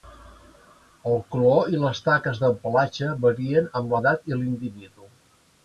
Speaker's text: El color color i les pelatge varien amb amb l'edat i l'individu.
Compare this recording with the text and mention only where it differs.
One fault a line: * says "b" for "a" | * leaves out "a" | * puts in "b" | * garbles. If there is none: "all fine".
* leaves out "color"
* puts in "taques del"
* leaves out "amb"